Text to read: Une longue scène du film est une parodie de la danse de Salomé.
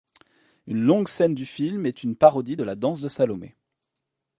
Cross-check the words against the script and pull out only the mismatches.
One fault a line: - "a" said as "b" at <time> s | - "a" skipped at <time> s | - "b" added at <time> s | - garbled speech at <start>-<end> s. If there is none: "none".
none